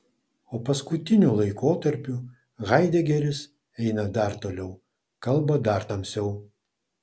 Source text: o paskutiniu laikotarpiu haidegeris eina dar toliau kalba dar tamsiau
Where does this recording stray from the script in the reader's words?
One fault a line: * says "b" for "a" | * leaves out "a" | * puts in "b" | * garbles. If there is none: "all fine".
all fine